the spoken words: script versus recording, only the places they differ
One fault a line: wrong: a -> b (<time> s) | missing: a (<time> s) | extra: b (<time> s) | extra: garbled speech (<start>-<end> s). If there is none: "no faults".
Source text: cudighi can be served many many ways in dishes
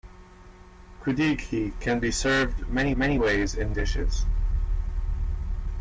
no faults